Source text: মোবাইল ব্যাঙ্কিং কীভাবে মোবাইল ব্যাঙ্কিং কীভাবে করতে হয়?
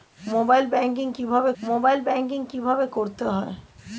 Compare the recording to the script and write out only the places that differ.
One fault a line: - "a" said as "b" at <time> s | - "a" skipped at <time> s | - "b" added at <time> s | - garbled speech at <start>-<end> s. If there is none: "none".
none